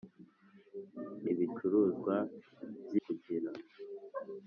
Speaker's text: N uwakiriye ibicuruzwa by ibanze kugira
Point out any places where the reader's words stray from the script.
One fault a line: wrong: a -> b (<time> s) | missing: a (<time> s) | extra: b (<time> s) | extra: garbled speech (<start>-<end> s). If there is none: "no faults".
missing: uwakiriye (1.2 s)
missing: ibanze (2.9 s)